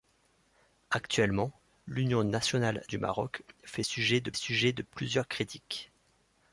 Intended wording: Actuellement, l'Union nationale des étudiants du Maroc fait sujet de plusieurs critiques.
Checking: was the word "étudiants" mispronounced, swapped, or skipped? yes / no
yes